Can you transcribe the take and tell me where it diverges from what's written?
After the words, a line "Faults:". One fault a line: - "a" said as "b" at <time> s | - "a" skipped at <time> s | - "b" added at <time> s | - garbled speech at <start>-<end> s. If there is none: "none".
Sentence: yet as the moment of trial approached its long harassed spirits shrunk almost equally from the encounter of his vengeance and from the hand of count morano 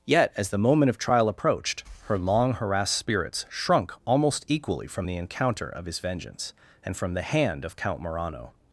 yet as the moment of trial approached her long harassed spirits shrunk almost equally from the encounter of his vengeance and from the hand of count morano
Faults:
- "its" said as "her" at 2.0 s